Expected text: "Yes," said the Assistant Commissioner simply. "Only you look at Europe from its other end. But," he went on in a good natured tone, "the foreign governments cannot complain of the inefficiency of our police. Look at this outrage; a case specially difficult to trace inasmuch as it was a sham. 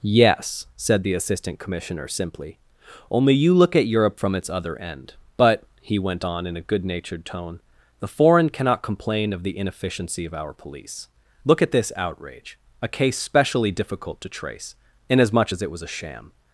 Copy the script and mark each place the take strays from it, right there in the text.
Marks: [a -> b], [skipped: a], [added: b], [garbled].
"Yes," said the Assistant Commissioner simply. "Only you look at Europe from its other end. But," he went on in a good natured tone, "the foreign [skipped: governments] cannot complain of the inefficiency of our police. Look at this outrage; a case specially difficult to trace inasmuch as it was a sham.